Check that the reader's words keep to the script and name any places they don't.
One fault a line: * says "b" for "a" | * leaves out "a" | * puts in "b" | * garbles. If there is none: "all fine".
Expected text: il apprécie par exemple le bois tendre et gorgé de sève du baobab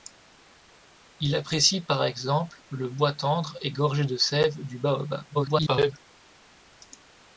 * garbles